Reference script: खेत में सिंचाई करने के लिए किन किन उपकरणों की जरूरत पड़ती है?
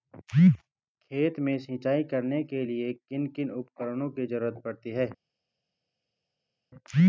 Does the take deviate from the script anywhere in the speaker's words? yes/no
no